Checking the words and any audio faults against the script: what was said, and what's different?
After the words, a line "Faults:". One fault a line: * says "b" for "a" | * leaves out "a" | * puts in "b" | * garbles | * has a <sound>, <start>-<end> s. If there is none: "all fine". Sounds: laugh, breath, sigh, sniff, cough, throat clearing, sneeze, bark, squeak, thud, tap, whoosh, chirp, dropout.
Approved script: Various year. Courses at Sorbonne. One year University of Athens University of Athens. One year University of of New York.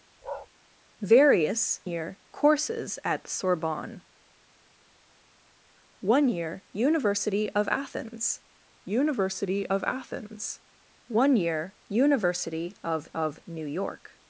Various year. Courses at Sorbonne. One year University of Athens University of Athens. One year University of of New York.
Faults:
* has a bark, 0.2-0.5 s